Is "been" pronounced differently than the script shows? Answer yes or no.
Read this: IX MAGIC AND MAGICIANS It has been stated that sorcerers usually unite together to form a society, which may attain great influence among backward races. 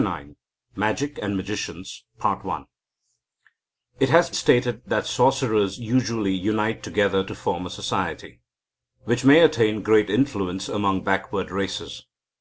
yes